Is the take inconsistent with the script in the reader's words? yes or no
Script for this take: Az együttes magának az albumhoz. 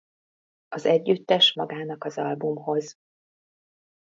no